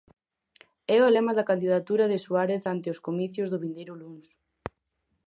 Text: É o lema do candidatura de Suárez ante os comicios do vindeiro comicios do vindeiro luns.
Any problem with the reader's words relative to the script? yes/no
yes